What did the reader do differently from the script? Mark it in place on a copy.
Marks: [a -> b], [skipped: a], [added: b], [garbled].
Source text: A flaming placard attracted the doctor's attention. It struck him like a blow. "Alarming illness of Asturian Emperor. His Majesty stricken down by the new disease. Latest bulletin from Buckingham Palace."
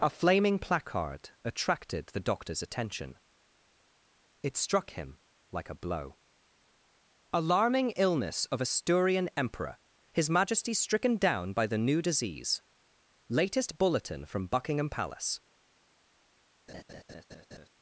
A flaming placard attracted the doctor's attention. It struck him like a blow. "Alarming illness of Asturian Emperor. His Majesty stricken down by the new disease. Latest bulletin from Buckingham Palace."